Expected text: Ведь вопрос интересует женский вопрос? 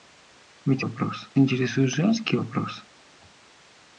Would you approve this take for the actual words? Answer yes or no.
yes